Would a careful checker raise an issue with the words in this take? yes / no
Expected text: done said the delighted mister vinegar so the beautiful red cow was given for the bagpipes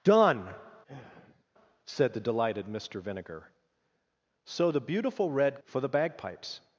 yes